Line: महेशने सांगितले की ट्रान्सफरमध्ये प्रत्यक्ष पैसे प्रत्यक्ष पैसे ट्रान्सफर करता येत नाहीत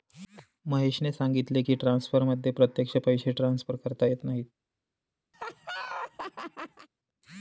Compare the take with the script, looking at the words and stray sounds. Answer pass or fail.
fail